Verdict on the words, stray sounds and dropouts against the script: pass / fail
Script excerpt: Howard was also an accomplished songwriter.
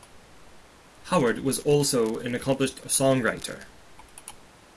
pass